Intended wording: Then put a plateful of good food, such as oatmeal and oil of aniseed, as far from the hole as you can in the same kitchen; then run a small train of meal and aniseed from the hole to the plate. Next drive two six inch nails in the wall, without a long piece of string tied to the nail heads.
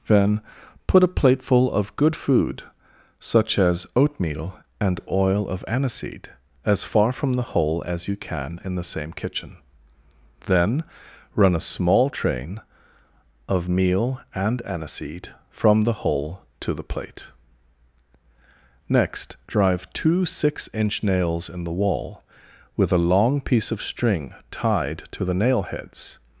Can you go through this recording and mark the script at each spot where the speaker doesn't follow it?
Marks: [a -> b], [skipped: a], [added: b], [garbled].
Then put a plateful of good food, such as oatmeal and oil of aniseed, as far from the hole as you can in the same kitchen; then run a small train of meal and aniseed from the hole to the plate. Next drive two six inch nails in the wall, [without -> with] a long piece of string tied to the nail heads.